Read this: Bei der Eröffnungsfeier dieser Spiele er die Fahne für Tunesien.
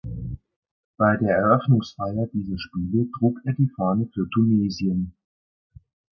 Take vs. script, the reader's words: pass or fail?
fail